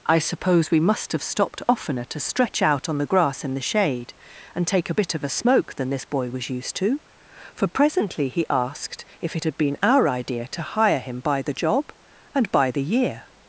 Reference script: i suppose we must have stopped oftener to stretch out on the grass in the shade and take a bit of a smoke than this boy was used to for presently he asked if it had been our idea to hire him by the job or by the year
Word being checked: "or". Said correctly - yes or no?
no